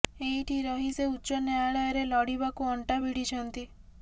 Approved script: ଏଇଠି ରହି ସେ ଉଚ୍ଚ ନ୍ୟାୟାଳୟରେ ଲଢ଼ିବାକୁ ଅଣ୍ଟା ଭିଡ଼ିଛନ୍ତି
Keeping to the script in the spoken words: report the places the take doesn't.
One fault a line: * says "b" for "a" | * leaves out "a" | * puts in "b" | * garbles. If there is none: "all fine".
all fine